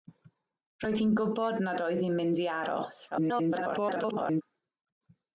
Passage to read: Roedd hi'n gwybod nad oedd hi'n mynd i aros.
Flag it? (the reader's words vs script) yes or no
yes